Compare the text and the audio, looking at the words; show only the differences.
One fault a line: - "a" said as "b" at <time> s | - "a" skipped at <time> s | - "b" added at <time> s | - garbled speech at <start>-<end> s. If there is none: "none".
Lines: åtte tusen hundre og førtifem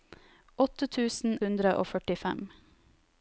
none